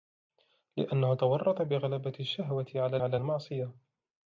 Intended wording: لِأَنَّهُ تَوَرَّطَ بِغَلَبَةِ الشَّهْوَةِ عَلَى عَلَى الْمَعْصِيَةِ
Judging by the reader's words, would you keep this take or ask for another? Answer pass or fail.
pass